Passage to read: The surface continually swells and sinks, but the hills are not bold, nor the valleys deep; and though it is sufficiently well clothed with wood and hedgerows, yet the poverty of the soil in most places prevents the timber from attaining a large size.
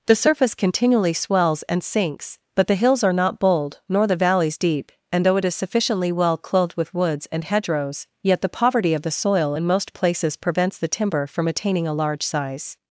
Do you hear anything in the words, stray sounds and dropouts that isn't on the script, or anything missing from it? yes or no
yes